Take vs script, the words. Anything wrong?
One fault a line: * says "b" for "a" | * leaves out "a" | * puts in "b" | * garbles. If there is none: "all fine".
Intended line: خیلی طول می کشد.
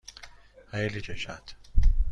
* leaves out "طول می"